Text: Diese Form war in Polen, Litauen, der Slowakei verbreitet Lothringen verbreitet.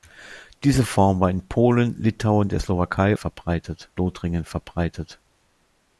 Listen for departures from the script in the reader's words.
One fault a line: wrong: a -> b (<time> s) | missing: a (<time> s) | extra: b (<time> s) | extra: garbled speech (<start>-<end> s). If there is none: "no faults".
no faults